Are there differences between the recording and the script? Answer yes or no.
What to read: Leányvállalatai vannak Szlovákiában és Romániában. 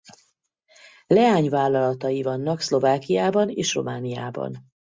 no